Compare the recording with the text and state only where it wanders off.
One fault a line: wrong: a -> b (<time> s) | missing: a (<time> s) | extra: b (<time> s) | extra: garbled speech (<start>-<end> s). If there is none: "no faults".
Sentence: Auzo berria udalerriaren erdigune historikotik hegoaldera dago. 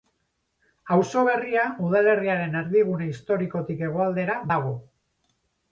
no faults